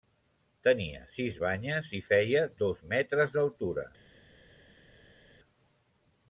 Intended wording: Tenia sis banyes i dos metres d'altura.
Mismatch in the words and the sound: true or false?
true